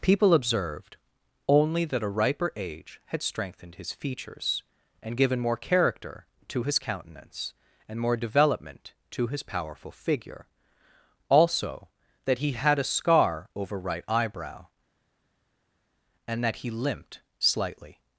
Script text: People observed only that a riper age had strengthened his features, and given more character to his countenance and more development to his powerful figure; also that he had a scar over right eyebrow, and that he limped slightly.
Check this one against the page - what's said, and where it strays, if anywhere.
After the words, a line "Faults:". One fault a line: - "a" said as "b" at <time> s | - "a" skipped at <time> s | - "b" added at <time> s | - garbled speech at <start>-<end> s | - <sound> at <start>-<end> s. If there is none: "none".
People observed only that a riper age had strengthened his features, and given more character to his countenance and more development to his powerful figure; also that he had a scar over right eyebrow, and that he limped slightly.
Faults:
none